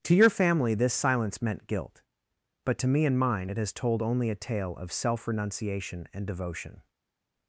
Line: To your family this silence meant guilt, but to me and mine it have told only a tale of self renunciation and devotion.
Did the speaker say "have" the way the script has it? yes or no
no